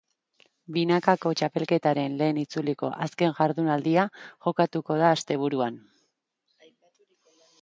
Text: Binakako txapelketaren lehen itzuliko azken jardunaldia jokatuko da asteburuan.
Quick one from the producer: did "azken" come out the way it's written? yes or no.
yes